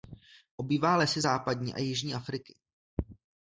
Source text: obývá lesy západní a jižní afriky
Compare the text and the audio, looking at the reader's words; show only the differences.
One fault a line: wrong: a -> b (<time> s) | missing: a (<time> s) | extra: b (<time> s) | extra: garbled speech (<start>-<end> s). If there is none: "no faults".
no faults